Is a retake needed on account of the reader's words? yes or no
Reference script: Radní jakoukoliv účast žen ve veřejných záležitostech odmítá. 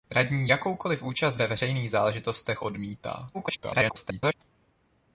yes